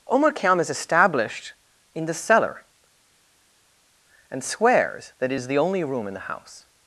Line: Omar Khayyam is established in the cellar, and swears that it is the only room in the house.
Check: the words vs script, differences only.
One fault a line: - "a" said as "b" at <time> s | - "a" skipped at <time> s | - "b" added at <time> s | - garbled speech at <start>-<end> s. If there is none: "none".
none